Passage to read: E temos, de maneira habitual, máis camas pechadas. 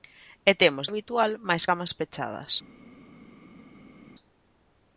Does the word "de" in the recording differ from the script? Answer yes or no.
yes